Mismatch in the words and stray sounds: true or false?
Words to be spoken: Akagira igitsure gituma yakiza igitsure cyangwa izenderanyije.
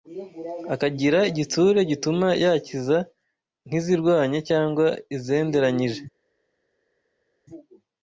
true